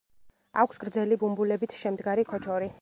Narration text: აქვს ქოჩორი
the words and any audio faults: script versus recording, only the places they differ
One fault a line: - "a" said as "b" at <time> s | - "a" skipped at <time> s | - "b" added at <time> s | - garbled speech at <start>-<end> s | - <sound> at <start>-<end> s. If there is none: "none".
- "გრძელი ბუმბულებით შემდგარი" added at 0.8 s